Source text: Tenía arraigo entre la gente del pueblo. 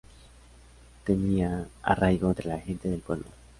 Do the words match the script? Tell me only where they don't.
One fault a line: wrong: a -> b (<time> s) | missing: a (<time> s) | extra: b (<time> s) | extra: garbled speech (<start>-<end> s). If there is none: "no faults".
no faults